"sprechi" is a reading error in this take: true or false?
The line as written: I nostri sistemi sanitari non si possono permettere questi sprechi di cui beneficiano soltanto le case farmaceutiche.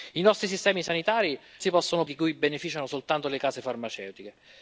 true